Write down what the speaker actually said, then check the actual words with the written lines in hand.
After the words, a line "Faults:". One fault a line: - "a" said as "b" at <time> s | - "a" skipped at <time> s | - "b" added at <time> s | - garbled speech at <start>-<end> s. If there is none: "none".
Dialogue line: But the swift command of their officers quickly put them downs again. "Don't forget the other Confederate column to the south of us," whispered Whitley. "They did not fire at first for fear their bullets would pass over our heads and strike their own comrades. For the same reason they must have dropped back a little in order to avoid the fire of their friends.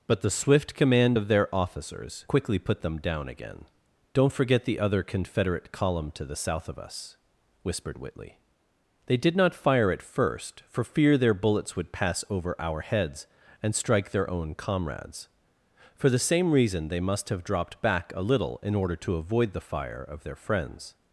But the swift command of their officers quickly put them down again. "Don't forget the other Confederate column to the south of us," whispered Whitley. "They did not fire at first for fear their bullets would pass over our heads and strike their own comrades. For the same reason they must have dropped back a little in order to avoid the fire of their friends.
Faults:
- "downs" said as "down" at 3.0 s